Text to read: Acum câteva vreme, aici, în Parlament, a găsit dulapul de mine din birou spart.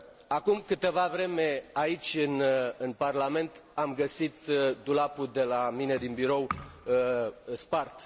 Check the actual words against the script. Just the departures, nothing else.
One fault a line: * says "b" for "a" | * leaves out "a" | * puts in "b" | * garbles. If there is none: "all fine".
* says "am" for "a"
* puts in "la"